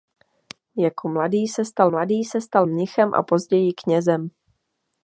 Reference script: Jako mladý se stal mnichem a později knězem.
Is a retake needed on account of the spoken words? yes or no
yes